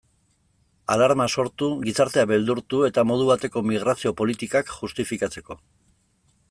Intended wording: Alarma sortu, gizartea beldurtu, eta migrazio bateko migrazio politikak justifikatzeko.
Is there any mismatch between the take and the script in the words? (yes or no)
yes